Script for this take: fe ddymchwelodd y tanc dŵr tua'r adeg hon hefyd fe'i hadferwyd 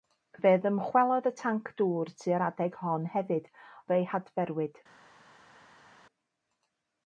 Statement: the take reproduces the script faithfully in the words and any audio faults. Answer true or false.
true